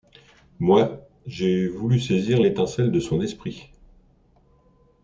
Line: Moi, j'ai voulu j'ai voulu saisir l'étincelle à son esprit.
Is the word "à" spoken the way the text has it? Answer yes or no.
no